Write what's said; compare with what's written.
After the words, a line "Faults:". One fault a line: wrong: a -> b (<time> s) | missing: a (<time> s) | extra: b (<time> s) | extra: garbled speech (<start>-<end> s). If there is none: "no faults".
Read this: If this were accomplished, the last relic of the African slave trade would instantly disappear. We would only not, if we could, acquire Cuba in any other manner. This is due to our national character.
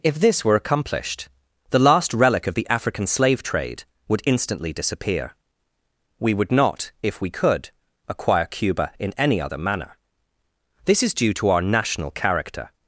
If this were accomplished, the last relic of the African slave trade would instantly disappear. We would not, if we could, acquire Cuba in any other manner. This is due to our national character.
Faults:
missing: only (6.5 s)